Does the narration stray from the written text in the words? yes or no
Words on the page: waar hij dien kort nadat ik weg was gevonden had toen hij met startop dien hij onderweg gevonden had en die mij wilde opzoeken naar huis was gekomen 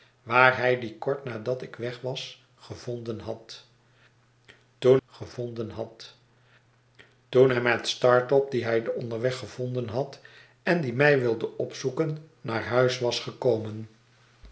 yes